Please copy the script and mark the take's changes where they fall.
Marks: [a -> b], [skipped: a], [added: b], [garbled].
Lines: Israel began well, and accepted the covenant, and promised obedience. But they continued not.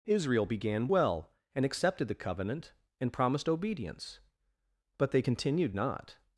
Israel began well, and accepted the covenant, and promised obedience. But they continued not.